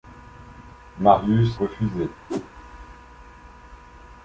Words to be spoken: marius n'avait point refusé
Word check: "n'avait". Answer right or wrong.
wrong